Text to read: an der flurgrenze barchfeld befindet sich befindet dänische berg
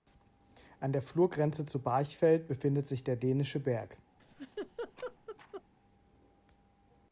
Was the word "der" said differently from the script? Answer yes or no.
no